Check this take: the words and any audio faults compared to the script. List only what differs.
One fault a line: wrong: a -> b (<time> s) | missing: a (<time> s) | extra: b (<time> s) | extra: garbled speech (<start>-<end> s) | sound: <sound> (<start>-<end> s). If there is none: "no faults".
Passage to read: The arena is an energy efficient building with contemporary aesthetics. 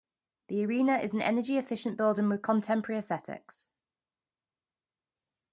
no faults